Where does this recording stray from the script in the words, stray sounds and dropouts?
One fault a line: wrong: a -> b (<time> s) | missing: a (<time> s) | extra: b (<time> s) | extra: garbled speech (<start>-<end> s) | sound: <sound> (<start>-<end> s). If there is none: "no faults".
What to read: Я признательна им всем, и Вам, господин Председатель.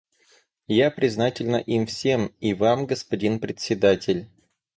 no faults